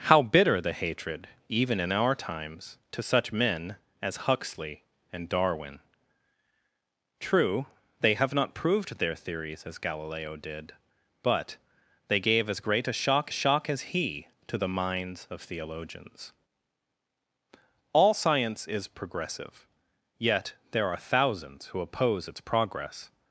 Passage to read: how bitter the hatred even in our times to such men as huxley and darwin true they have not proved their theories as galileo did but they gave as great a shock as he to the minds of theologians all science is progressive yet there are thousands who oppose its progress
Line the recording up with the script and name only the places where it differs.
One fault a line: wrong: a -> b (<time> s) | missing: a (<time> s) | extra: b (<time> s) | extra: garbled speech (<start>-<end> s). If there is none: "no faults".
extra: shock (13.3 s)